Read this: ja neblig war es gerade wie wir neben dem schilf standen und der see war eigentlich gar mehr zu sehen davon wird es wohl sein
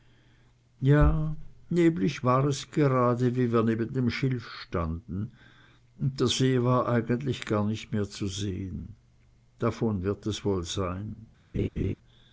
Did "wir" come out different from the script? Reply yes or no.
no